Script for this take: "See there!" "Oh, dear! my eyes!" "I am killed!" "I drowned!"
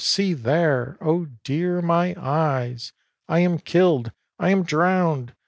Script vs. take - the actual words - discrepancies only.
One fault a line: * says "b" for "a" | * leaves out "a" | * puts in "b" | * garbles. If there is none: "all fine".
* puts in "am"